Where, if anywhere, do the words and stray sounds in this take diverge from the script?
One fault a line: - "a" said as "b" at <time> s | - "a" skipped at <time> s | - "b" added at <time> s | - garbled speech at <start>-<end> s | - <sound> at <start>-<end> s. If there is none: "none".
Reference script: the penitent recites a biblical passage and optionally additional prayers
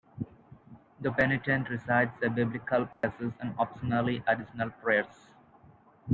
- dropout at 2.9-3.0 s